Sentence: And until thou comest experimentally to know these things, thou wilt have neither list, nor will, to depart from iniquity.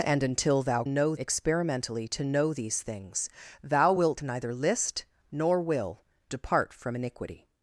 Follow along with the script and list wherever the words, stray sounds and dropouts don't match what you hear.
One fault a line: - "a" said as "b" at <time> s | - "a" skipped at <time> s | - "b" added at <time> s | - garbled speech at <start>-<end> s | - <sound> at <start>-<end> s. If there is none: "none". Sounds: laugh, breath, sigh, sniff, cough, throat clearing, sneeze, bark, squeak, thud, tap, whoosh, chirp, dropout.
- "comest" said as "know" at 0.9 s
- "have" skipped at 4.2 s
- "to" skipped at 6.0 s